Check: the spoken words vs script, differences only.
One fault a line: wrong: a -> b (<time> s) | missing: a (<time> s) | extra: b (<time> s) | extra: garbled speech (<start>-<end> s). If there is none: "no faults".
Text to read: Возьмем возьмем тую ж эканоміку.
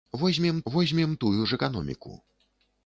no faults